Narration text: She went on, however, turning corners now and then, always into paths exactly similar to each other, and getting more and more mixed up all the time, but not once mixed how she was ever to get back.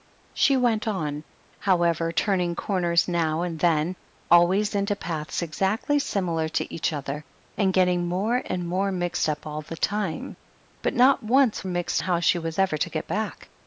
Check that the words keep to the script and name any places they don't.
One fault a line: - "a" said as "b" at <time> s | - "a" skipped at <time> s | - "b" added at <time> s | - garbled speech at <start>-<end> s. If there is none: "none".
none